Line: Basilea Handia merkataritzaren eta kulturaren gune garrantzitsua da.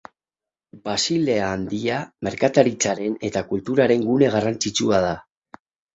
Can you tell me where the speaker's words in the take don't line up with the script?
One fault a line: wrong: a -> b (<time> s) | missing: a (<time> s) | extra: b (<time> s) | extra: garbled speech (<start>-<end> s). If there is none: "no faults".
no faults